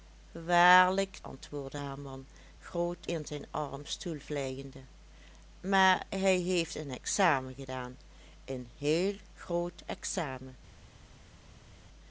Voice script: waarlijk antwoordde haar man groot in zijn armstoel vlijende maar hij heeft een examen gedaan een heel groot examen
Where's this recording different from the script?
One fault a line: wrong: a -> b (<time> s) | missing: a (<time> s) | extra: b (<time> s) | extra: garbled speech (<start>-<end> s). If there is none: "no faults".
no faults